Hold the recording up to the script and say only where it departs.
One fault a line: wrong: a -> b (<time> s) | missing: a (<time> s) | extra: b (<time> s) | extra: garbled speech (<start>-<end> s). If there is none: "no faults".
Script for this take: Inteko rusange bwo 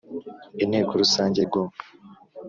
no faults